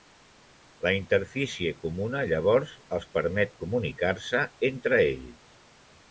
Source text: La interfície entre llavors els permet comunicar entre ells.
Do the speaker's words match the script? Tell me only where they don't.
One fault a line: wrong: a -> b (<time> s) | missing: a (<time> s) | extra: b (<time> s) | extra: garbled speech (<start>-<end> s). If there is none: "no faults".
wrong: entre -> comuna (1.8 s)
extra: se (4.3 s)